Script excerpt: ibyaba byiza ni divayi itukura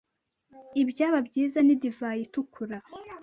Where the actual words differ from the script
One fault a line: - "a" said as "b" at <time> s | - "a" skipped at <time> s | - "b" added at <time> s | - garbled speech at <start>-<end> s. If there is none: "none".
none